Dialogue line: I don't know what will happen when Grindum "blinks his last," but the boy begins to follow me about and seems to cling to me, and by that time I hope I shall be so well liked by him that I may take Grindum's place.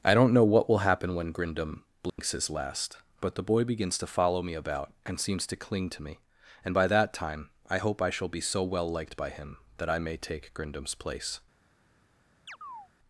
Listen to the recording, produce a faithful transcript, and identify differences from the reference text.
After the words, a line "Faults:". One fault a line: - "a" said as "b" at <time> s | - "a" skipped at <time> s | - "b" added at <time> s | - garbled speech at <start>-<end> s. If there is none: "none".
I don't know what will happen when Grindum "blinks his last," but the boy begins to follow me about and seems to cling to me, and by that time I hope I shall be so well liked by him that I may take Grindum's place.
Faults:
none